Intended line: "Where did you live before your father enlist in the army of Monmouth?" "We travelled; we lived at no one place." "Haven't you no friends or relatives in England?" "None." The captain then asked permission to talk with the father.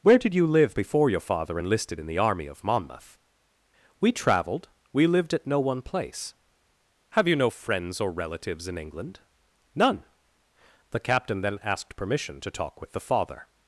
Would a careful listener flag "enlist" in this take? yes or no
yes